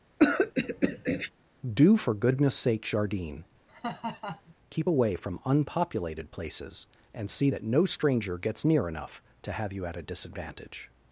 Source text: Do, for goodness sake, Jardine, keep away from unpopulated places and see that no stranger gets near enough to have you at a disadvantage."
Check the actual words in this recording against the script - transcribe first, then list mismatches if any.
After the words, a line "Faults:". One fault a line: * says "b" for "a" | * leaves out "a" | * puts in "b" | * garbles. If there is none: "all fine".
Do, for goodness sake, Jardine, keep away from unpopulated places and see that no stranger gets near enough to have you at a disadvantage."
Faults:
all fine